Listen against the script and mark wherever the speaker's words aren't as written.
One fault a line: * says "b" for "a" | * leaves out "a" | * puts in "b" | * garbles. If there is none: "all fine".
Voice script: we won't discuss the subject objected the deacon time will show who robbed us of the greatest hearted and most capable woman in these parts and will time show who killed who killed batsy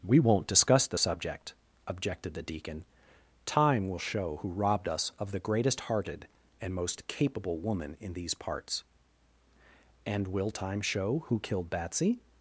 * leaves out "who killed"